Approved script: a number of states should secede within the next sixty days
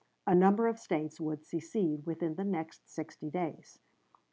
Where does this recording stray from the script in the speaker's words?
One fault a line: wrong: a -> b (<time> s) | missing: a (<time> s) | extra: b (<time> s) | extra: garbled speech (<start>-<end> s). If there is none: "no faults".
wrong: should -> would (1.2 s)